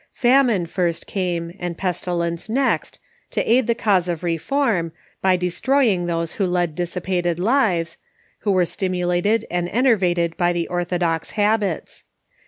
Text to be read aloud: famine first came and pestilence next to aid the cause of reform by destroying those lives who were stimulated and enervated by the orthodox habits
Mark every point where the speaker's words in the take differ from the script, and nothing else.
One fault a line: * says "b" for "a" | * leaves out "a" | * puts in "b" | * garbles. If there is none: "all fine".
* puts in "who led dissipated"